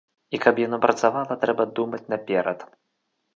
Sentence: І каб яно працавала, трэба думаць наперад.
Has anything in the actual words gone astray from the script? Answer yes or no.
no